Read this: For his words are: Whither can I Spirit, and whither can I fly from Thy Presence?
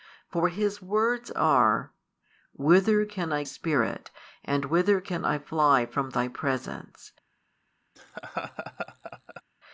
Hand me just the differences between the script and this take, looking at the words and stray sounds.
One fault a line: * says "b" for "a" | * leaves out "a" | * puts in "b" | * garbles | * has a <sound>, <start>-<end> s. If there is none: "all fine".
* has a laugh, 8.0-9.4 s